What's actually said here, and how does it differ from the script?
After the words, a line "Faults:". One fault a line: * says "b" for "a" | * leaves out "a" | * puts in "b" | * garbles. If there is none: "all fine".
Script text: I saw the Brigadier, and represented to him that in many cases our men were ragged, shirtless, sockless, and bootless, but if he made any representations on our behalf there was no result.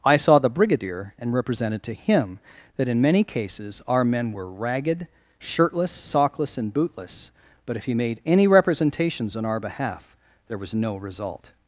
I saw the Brigadier, and represented to him that in many cases our men were ragged, shirtless, sockless, and bootless, but if he made any representations on our behalf there was no result.
Faults:
all fine